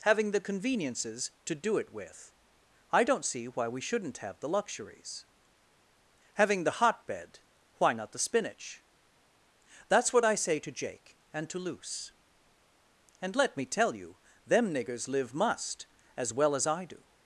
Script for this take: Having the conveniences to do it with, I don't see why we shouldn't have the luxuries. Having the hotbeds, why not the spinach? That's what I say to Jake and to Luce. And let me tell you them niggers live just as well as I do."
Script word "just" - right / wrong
wrong